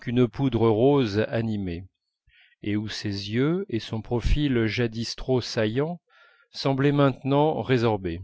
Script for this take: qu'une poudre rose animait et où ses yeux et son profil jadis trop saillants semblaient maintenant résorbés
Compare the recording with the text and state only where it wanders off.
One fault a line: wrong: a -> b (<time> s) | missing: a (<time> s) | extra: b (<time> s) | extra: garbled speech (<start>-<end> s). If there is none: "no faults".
no faults